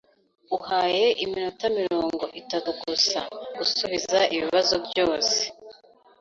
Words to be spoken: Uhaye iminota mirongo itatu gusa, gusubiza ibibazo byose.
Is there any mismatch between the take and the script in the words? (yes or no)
no